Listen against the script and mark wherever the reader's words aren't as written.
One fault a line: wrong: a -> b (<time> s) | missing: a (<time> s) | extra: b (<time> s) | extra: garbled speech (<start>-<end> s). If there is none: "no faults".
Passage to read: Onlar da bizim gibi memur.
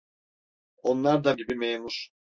missing: bizim (1.4 s)